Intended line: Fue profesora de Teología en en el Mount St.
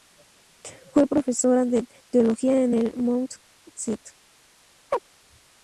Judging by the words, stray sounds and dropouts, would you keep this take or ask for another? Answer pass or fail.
fail